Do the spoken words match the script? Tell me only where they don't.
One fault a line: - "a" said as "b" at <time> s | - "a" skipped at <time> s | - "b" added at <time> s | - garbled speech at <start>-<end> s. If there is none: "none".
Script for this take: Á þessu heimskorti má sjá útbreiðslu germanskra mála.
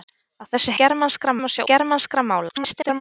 - "heimskorti" said as "germanskra" at 0.8 s
- "útbreiðslu" skipped at 1.6 s
- garbled speech at 2.5-3.0 s